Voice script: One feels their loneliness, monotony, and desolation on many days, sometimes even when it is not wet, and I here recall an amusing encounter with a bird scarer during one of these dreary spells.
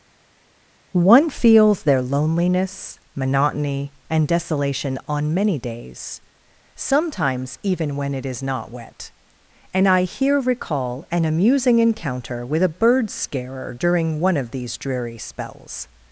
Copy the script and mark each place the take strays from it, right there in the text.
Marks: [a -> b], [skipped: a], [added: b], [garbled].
One feels their loneliness, monotony, and desolation on many days, sometimes even when it is not wet, and I here recall an amusing encounter with a bird scarer during one of these dreary spells.